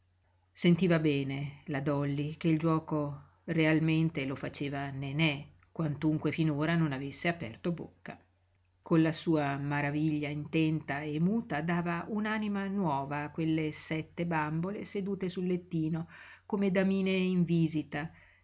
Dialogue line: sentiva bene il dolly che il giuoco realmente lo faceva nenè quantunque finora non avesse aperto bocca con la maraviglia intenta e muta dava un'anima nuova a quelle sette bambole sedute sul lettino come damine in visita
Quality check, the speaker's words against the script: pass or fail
fail